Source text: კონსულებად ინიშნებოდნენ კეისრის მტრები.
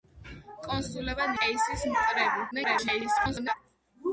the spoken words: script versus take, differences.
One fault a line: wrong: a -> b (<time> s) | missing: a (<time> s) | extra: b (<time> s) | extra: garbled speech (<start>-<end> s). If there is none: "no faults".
missing: ინიშნებოდნენ (1.4 s)
extra: garbled speech (2.5-3.5 s)